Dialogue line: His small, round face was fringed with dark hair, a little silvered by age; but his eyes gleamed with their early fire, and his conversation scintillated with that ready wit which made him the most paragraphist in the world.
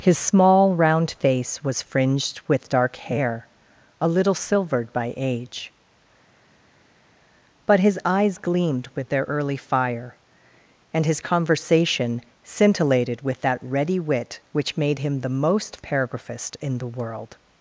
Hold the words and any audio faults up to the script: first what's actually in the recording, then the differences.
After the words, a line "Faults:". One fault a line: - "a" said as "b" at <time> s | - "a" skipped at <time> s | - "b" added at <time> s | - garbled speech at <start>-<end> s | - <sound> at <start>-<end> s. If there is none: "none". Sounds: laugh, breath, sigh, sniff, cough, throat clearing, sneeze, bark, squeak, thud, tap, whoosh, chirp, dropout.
His small, round face was fringed with dark hair, a little silvered by age; but his eyes gleamed with their early fire, and his conversation scintillated with that ready wit which made him the most paragraphist in the world.
Faults:
none